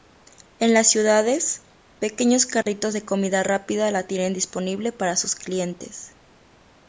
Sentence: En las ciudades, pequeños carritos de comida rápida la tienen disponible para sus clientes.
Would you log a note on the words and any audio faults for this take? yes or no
yes